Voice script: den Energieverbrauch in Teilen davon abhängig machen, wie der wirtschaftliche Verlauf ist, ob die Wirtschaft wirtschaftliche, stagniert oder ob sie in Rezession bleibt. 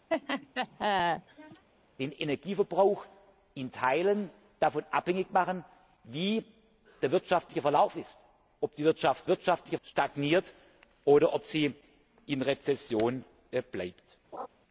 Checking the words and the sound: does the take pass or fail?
fail